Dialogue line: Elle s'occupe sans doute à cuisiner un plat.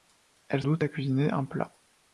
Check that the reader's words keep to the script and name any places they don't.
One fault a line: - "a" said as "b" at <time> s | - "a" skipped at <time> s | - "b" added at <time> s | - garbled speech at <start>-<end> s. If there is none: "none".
- "s'occupe sans" skipped at 0.6 s